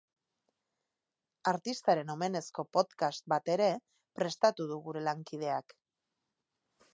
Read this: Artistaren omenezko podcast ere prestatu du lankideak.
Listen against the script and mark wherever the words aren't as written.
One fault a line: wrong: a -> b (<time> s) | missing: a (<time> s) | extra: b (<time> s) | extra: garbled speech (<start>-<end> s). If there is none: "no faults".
extra: bat (3.4 s)
extra: gure (4.9 s)